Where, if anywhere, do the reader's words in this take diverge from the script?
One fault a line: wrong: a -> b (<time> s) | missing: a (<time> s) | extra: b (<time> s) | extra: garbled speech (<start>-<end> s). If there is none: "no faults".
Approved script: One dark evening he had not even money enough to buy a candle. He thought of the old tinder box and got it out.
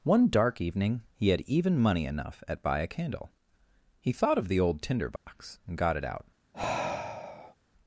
missing: not (1.4 s)
wrong: to -> at (2.5 s)